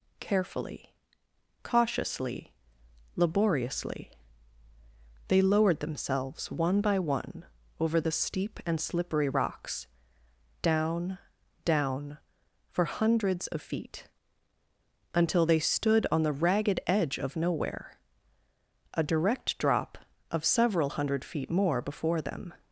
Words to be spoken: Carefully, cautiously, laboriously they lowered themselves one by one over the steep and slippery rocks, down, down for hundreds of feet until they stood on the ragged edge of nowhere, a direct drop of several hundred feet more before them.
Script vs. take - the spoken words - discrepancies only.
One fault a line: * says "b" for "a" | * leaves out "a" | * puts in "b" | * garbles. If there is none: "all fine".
all fine